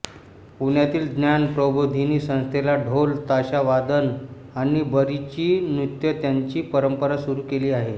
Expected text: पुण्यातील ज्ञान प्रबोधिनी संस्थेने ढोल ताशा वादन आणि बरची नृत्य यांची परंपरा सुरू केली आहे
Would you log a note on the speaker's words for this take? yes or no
no